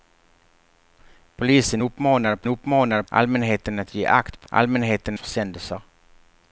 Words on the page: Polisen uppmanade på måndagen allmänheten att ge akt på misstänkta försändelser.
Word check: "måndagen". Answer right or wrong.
wrong